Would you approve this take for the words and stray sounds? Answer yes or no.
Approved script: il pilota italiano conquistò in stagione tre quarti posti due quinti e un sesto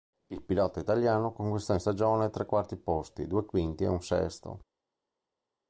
yes